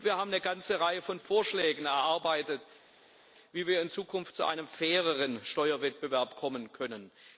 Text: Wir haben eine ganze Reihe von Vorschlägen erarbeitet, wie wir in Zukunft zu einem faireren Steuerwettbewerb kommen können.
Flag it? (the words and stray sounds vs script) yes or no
no